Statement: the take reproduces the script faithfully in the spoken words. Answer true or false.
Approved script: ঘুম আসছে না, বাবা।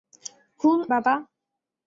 false